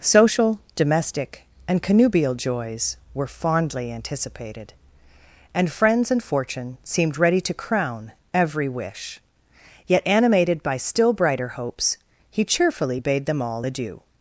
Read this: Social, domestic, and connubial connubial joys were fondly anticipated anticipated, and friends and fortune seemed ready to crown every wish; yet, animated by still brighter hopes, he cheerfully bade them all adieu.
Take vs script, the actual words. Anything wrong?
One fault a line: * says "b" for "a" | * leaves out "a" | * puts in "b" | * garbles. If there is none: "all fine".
* leaves out "connubial"
* leaves out "anticipated"